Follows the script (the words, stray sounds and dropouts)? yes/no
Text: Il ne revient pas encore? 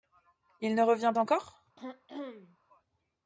no